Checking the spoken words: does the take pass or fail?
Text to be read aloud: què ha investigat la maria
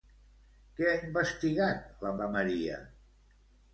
fail